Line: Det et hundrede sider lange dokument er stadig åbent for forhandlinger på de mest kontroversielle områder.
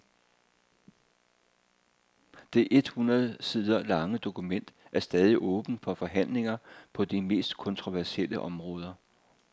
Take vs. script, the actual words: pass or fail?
pass